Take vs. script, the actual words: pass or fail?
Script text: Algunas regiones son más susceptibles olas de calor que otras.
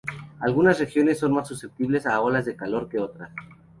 fail